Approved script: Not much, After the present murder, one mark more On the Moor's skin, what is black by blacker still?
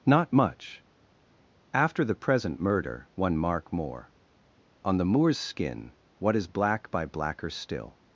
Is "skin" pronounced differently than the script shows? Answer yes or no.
no